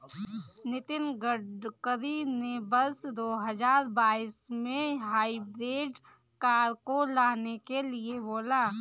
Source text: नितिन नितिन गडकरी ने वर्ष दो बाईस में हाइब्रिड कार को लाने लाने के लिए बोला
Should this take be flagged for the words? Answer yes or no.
yes